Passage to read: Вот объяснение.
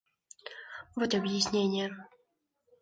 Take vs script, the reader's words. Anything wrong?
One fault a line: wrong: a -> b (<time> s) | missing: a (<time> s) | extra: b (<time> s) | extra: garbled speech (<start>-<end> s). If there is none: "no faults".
no faults